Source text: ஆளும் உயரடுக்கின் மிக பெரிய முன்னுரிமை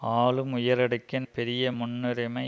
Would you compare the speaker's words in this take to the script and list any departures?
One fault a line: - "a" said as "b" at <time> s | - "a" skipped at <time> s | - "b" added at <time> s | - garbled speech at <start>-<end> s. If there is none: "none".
- "மிக" skipped at 1.3 s